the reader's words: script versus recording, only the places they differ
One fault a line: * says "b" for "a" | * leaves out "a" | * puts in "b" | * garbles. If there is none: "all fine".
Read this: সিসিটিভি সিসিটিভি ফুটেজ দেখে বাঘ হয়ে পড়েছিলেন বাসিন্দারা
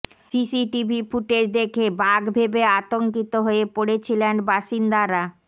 * leaves out "সিসিটিভি"
* puts in "ভেবে আতঙ্কিত"